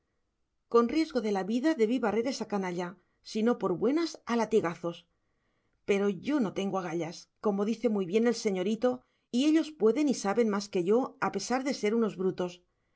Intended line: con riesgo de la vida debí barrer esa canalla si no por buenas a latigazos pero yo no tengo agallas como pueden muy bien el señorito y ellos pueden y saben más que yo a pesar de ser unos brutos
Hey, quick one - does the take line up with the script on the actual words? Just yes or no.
no